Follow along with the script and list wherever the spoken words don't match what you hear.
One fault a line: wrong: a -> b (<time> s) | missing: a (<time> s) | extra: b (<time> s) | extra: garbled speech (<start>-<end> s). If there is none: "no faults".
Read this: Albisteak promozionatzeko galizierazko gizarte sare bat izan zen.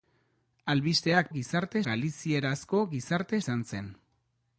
wrong: promozionatzeko -> gizarte (1.4 s)
missing: sare bat (3.4 s)